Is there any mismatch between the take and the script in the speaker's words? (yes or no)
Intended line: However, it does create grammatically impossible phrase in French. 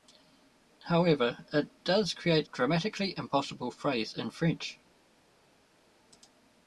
no